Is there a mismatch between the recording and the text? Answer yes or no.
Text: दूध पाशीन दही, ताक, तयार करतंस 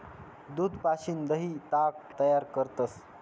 no